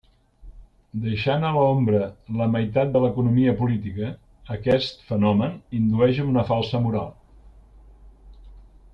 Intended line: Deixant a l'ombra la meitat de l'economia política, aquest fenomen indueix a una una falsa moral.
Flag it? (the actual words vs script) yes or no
yes